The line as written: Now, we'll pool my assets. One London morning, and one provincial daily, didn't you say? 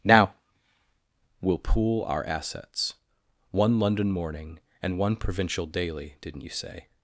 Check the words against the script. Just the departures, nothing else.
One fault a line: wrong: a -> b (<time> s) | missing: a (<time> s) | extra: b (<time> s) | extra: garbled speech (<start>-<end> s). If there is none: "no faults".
wrong: my -> our (2.0 s)